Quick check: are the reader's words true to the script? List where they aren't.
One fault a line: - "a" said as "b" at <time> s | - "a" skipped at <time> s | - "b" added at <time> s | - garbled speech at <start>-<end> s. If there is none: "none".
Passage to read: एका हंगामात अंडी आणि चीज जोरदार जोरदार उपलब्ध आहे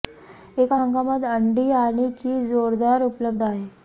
- "जोरदार" skipped at 3.0 s